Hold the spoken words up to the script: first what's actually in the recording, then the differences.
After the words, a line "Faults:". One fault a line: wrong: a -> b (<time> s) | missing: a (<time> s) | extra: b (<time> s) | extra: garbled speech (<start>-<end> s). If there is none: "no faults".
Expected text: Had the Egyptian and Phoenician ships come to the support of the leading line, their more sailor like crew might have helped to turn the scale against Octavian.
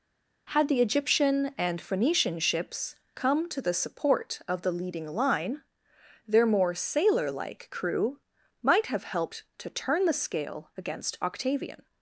Had the Egyptian and Phoenician ships come to the support of the leading line, their more sailor like crew might have helped to turn the scale against Octavian.
Faults:
no faults